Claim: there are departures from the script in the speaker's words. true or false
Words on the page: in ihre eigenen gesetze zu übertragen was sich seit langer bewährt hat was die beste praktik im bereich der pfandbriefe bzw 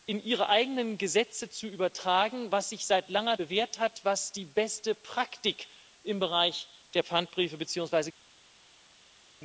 false